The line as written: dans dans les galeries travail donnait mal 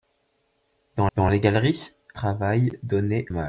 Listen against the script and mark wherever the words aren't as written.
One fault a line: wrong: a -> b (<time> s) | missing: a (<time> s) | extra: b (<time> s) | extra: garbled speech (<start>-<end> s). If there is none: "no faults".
no faults